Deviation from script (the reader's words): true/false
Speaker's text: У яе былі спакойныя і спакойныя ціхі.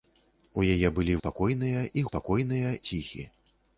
false